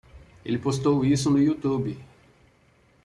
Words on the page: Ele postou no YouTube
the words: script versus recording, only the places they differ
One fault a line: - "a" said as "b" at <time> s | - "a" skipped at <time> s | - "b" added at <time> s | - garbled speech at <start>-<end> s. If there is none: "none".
- "isso" added at 1.1 s